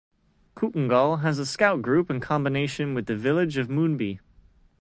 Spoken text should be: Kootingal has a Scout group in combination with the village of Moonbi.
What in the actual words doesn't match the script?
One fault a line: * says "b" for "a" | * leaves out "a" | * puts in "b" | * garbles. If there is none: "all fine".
all fine